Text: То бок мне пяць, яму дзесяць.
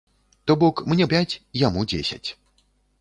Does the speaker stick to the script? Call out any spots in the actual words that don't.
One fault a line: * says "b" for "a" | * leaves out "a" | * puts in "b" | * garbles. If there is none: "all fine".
all fine